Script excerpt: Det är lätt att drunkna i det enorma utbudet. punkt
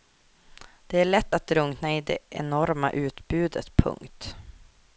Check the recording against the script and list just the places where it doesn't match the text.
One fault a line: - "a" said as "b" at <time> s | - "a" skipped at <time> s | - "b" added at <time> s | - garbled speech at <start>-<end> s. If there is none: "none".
none